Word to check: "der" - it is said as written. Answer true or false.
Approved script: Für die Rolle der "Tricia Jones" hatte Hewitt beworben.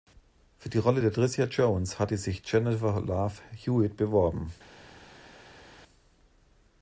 true